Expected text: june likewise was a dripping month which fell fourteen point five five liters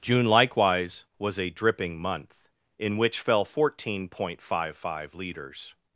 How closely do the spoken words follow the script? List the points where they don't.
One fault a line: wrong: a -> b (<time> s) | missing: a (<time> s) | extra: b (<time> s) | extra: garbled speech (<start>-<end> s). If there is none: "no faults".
extra: in (2.8 s)